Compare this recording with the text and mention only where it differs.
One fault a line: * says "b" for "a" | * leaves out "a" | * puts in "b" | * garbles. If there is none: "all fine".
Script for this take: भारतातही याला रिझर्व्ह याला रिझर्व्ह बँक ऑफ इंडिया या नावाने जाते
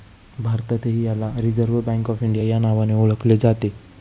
* leaves out "याला रिझर्व्ह"
* puts in "ओळखले"